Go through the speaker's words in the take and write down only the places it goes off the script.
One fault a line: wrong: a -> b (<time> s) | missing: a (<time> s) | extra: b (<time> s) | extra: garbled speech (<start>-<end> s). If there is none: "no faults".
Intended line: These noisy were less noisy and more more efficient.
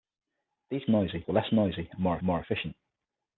no faults